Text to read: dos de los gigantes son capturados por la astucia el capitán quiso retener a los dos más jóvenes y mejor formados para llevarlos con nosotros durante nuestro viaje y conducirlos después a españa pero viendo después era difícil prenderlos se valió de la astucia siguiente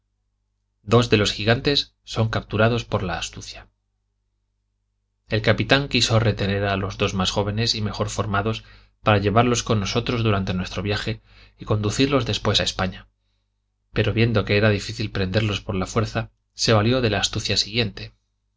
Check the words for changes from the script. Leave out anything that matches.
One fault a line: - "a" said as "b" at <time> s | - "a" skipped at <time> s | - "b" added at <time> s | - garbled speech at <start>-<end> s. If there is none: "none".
- "después" said as "que" at 14.4 s
- "por la fuerza" added at 15.6 s